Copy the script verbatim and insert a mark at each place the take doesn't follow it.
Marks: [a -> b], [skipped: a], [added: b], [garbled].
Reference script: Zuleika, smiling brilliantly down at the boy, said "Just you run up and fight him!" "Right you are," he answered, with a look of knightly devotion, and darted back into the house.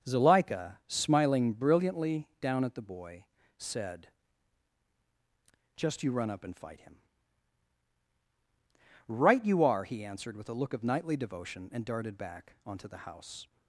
Zuleika, smiling brilliantly down at the boy, said "Just you run up and fight him!" "Right you are," he answered, with a look of knightly devotion, and darted back [into -> onto] the house.